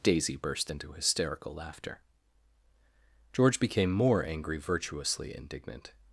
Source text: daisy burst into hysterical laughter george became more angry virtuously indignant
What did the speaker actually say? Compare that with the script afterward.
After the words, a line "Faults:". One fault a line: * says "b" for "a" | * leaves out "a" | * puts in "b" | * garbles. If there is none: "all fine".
daisy burst into hysterical laughter george became more angry virtuously indignant
Faults:
all fine